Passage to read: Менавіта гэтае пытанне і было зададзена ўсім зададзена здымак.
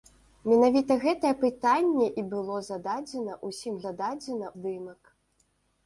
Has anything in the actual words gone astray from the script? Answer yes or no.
no